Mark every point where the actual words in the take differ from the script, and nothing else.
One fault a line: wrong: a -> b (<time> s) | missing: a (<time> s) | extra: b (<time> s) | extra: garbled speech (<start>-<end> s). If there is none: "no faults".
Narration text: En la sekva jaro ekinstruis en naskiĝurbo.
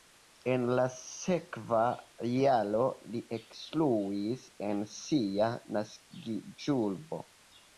extra: li (3.1 s)
extra: sia (5.0 s)